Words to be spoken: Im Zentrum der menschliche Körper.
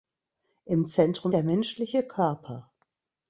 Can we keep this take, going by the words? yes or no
yes